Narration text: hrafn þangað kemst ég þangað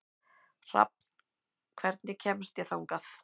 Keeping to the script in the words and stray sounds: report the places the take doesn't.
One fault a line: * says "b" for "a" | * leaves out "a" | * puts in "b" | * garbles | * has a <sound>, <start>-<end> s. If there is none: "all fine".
* says "hvernig" for "þangað"